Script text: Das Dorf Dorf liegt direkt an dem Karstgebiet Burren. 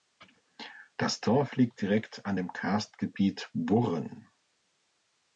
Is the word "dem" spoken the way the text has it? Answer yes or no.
yes